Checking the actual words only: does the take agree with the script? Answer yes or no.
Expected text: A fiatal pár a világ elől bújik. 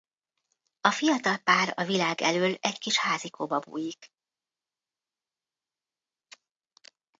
no